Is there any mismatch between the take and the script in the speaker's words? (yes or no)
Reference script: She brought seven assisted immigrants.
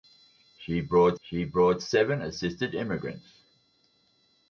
yes